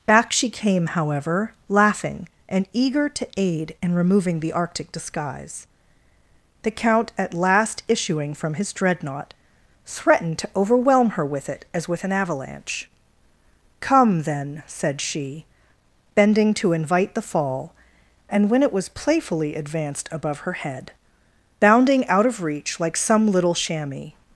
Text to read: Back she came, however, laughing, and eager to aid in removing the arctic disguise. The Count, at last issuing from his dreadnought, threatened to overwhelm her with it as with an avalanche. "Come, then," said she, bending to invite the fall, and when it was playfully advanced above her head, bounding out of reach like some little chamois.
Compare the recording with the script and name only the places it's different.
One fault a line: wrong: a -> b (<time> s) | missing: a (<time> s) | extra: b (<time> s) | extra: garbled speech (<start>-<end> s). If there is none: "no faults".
no faults